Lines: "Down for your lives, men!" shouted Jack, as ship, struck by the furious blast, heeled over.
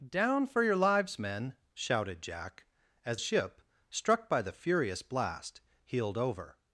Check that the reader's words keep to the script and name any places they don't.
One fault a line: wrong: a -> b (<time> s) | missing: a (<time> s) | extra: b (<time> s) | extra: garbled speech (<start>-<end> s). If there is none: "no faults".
no faults